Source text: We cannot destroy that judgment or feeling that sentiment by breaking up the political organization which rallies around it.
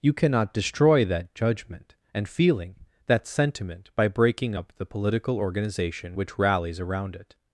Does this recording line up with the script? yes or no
no